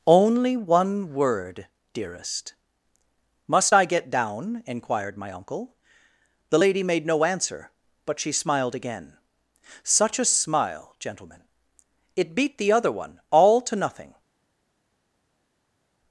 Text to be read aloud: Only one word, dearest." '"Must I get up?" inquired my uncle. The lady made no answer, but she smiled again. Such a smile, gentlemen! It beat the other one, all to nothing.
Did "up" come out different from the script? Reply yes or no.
yes